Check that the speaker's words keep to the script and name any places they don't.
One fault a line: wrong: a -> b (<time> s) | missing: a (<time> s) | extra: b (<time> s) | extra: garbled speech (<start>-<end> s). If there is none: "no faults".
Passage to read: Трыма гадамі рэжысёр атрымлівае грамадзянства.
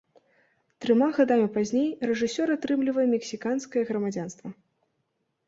extra: пазней (1.6 s)
extra: мексіканскае (3.2 s)